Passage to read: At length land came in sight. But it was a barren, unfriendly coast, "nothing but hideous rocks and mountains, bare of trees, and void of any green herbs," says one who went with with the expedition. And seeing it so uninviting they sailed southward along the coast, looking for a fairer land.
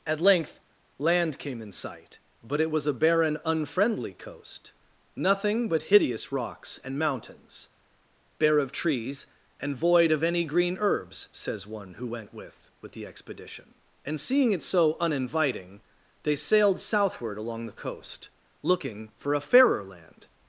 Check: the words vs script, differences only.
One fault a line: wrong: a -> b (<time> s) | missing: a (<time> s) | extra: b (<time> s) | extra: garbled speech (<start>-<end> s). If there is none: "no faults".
no faults